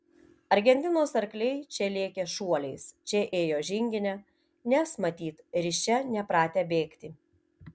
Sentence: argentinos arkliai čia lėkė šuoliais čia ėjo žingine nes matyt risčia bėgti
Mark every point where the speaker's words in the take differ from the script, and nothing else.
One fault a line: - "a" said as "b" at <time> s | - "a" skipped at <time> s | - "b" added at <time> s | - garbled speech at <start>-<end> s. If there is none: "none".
- "nepratę" added at 6.1 s